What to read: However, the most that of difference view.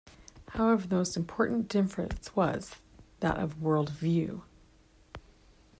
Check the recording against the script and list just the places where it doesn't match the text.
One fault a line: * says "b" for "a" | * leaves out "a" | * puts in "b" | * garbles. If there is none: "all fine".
* puts in "important difference was"
* says "world" for "difference"